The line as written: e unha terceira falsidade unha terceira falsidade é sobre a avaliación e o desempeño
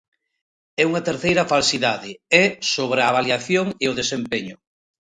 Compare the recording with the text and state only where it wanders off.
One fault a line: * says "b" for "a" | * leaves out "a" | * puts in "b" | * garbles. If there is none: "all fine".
* leaves out "unha terceira falsidade"